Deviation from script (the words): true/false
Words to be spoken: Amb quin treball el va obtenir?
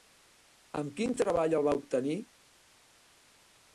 false